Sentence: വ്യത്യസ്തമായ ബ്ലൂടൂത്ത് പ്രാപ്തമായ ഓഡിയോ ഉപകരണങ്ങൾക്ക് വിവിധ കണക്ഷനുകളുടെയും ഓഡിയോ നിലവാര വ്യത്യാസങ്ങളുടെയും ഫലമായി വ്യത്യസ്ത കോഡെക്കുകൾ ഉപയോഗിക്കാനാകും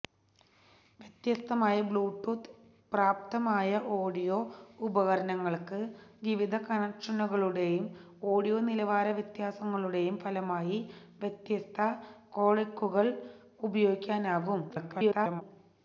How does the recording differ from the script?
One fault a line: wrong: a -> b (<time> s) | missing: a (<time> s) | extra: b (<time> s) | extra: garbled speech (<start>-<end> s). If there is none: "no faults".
extra: garbled speech (14.7-15.4 s)